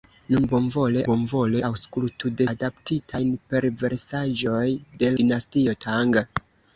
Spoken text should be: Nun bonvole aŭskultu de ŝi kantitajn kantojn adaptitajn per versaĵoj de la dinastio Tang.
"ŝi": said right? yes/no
no